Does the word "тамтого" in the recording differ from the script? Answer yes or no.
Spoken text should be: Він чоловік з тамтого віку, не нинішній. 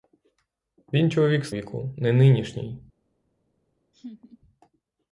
yes